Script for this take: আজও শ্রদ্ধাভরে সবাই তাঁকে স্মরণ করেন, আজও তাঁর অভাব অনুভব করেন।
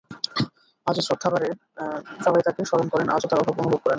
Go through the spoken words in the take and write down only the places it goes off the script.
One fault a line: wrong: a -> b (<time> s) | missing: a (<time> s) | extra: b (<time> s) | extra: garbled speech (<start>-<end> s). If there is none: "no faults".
no faults